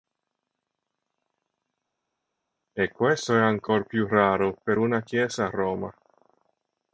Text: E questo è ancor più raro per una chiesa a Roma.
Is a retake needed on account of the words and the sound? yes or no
no